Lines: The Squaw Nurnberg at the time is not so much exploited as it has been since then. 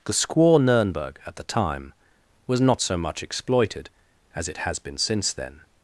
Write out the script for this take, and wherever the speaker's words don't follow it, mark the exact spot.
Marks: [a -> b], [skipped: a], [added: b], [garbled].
The Squaw Nurnberg at the time [is -> was] not so much exploited as it has been since then.